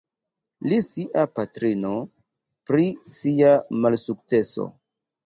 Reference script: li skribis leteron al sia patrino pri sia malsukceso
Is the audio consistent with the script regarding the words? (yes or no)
no